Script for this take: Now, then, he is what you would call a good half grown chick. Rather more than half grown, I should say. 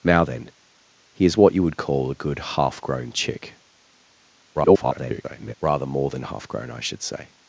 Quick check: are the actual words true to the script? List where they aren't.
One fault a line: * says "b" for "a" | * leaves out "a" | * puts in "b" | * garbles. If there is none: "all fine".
* garbles